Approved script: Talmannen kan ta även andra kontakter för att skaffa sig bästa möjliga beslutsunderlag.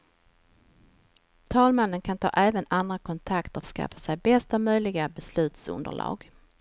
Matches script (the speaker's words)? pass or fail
fail